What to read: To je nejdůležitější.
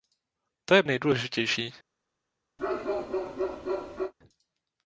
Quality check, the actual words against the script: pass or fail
pass